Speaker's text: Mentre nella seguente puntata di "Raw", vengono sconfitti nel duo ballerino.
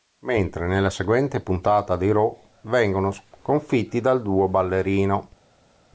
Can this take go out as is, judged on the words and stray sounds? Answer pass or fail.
fail